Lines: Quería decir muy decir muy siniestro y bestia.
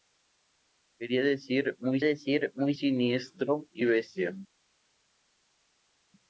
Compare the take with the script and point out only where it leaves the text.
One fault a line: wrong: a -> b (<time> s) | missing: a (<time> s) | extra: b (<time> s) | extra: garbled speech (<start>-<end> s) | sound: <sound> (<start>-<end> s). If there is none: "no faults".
no faults